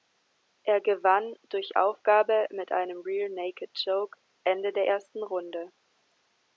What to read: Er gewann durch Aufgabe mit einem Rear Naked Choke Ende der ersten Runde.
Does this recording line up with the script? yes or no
yes